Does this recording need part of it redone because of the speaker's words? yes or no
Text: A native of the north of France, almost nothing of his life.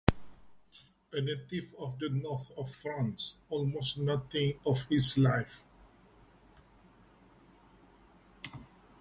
no